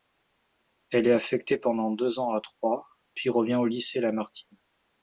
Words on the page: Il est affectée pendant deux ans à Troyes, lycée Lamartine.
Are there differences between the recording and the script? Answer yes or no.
yes